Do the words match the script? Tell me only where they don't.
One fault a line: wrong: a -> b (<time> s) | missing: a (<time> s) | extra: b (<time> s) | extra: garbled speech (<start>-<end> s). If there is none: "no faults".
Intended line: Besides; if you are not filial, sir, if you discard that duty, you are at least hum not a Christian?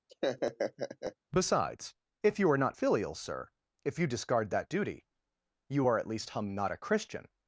no faults